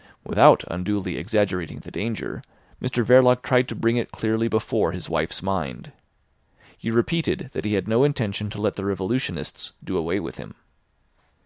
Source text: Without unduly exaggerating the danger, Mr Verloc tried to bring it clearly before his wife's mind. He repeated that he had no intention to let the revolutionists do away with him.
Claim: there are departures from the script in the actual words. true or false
false